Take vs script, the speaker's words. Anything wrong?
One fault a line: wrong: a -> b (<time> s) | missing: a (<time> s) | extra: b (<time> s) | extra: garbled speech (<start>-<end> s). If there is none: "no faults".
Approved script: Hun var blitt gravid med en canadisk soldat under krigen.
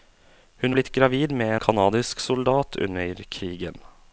missing: var (0.8 s)
missing: en (1.6 s)